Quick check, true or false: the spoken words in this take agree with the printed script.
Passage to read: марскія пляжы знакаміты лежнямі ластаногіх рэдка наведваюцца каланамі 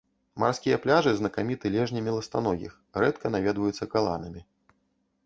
true